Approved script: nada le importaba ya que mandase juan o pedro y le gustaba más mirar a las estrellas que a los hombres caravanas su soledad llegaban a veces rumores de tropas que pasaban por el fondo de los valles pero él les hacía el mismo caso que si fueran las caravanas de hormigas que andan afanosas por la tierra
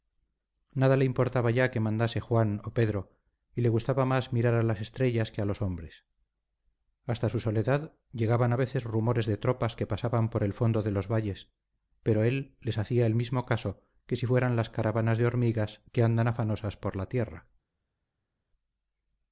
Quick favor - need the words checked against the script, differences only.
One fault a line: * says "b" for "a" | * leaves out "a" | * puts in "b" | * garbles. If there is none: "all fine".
* says "hasta" for "caravanas"